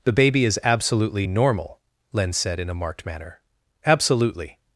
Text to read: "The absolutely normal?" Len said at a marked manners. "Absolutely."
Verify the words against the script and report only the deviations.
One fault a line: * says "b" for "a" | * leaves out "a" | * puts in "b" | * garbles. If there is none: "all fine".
* puts in "baby is"
* says "in" for "at"
* says "manner" for "manners"